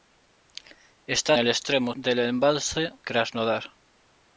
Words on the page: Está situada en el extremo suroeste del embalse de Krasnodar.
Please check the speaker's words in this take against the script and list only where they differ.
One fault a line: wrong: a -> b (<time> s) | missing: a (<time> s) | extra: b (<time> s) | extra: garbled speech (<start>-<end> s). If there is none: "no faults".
missing: situada (1.4 s)
missing: suroeste (1.9 s)
missing: de (2.9 s)